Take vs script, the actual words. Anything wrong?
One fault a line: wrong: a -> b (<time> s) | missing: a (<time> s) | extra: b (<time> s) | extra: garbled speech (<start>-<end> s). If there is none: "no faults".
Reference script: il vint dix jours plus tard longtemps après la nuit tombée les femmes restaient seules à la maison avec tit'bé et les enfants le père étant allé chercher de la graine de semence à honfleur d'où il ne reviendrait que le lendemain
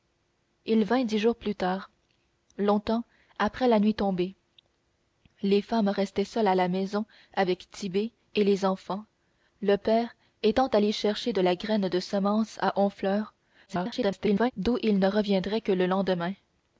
extra: garbled speech (13.7-14.5 s)